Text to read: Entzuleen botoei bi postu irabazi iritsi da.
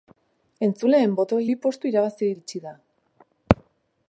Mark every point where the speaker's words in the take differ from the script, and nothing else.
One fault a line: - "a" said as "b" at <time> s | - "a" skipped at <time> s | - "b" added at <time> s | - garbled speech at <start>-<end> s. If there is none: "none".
none